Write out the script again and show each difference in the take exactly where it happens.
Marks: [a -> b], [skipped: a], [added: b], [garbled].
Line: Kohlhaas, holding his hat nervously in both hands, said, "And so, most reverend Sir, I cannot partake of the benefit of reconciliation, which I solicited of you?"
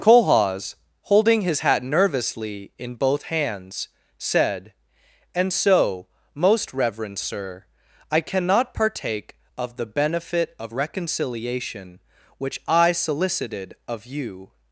Kohlhaas, holding his hat nervously in both hands, said, "And so, most reverend Sir, I cannot partake of the benefit of reconciliation, which I solicited of you?"